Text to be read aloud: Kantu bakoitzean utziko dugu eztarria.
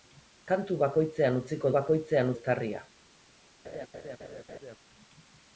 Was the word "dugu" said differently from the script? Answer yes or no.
yes